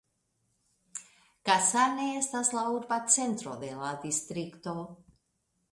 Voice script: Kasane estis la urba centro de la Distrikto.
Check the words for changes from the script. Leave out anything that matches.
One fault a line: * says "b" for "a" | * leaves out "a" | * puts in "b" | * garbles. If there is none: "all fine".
* says "estas" for "estis"